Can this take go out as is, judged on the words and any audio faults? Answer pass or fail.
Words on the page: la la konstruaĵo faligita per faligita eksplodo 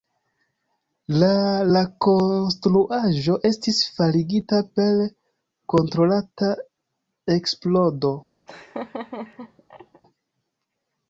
fail